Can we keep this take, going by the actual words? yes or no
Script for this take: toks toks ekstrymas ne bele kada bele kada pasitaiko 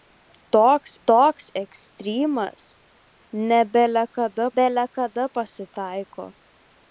yes